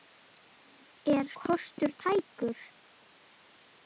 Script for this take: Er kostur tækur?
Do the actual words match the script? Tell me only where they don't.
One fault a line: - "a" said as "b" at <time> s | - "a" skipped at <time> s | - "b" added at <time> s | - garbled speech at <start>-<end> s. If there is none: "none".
none